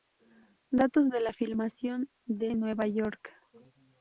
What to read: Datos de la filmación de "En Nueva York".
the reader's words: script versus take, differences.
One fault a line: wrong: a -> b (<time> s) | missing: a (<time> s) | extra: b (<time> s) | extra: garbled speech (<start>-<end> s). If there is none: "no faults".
no faults